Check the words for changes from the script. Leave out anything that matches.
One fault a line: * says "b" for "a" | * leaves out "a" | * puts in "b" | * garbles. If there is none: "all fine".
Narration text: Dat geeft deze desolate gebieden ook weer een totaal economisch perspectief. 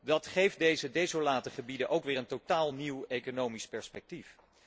* puts in "nieuw"